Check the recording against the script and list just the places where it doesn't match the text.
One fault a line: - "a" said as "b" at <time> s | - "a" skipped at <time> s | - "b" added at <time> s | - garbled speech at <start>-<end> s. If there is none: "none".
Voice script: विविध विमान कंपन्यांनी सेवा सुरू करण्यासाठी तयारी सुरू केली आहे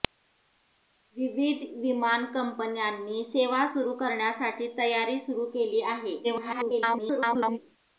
- garbled speech at 6.2-7.6 s